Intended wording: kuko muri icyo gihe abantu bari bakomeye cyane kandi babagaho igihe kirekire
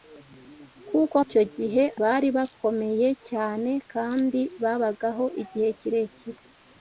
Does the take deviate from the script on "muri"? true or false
true